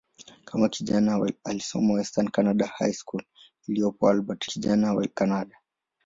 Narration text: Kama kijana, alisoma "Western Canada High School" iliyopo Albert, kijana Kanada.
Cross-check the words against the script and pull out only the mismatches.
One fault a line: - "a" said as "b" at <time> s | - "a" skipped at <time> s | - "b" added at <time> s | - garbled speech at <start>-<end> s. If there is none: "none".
none